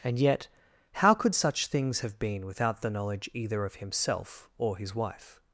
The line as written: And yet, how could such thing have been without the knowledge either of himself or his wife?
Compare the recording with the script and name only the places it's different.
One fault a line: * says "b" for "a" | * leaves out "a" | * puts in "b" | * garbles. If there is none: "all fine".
* says "things" for "thing"